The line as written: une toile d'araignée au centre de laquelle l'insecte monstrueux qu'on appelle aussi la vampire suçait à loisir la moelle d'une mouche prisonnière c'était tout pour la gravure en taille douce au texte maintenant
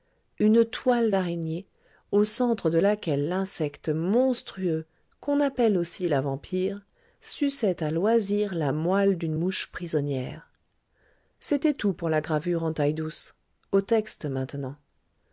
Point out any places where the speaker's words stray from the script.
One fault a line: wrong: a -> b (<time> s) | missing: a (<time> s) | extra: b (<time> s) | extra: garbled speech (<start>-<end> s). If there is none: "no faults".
no faults